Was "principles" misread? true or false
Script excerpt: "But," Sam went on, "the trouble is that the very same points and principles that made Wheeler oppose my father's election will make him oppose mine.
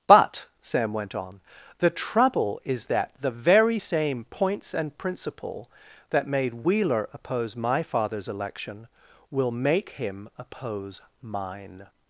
true